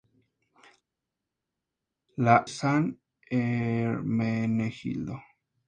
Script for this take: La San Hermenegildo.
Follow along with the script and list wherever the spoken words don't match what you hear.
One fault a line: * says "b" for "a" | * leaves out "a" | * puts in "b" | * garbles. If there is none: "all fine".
all fine